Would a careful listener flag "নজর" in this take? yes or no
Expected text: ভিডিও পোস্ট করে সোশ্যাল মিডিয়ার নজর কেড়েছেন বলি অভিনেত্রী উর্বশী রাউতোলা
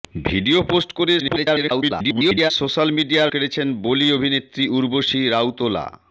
yes